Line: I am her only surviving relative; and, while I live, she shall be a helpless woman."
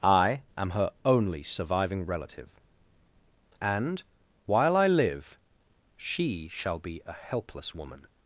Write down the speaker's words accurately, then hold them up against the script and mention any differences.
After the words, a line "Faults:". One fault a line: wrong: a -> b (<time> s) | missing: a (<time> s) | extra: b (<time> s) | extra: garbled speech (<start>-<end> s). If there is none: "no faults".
I am her only surviving relative; and, while I live, she shall be a helpless woman."
Faults:
no faults